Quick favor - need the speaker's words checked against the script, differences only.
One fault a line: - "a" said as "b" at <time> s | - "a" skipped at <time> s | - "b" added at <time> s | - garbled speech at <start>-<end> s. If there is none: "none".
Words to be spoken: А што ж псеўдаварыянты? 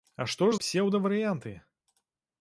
none